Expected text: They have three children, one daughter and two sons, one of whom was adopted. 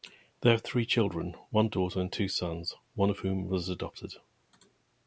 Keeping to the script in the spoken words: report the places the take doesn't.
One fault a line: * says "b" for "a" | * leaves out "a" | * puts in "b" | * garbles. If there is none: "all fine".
all fine